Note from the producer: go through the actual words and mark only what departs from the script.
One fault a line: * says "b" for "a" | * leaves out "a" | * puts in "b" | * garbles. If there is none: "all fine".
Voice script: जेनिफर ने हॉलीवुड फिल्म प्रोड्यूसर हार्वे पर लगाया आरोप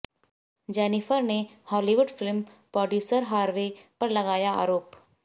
all fine